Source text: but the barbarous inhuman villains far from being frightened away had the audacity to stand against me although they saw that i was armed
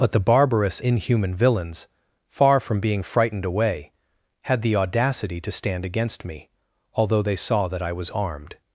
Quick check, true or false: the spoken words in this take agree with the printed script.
true